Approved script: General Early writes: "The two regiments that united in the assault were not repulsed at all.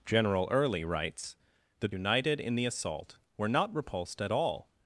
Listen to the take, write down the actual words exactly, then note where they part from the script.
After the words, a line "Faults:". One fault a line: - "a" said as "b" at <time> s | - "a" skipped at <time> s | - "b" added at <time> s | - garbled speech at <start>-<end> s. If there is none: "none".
General Early writes: "The united in the assault were not repulsed at all.
Faults:
- "two regiments that" skipped at 1.9 s